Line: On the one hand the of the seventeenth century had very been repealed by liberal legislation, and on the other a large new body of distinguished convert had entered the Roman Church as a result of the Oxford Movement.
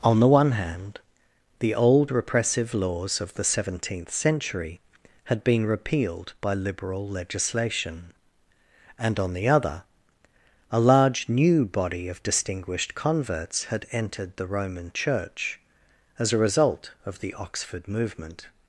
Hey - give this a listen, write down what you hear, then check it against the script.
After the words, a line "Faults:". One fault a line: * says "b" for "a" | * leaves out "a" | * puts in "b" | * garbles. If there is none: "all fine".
On the one hand the old repressive laws of the seventeenth century had been repealed by liberal legislation, and on the other a large new body of distinguished converts had entered the Roman Church as a result of the Oxford Movement.
Faults:
* puts in "old repressive laws"
* leaves out "very"
* says "converts" for "convert"